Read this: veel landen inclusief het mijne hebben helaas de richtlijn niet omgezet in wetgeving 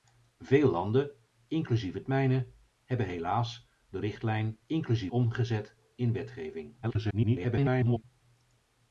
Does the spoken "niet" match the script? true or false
false